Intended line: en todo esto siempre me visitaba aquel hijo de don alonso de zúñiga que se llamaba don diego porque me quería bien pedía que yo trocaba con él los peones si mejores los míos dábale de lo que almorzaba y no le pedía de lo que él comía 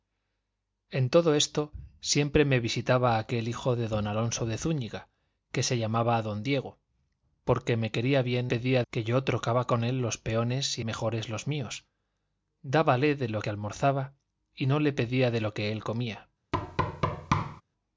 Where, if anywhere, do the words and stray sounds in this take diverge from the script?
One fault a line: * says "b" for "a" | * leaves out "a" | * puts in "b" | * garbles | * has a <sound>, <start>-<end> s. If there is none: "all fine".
* has a thud, 16.5-17.6 s